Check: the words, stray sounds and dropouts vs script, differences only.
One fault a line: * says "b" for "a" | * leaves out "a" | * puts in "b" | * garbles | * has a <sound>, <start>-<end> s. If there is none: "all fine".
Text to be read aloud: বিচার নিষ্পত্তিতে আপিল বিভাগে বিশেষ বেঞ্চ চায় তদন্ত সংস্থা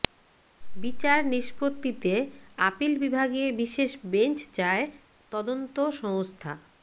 all fine